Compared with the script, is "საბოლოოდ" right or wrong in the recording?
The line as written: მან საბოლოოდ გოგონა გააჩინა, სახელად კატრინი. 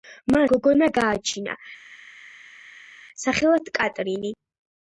wrong